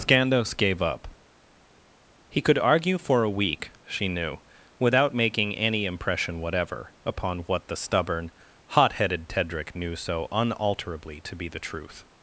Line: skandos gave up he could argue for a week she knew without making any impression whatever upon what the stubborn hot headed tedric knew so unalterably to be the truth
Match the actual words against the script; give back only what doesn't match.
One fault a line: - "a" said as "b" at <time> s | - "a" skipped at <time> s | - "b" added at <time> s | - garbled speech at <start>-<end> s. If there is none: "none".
none